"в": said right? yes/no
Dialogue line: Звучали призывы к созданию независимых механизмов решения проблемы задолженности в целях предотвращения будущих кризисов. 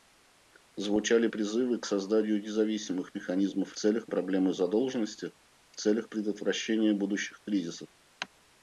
yes